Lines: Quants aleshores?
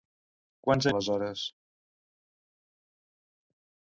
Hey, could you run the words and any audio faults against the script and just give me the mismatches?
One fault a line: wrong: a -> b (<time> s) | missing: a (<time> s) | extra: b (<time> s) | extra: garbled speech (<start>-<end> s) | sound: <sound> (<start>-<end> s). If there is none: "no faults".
no faults